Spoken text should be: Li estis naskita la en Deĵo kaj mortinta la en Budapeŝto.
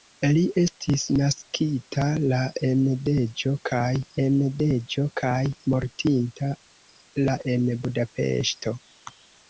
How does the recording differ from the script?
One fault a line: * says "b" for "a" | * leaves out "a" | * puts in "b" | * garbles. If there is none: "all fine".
* puts in "en Deĵo kaj"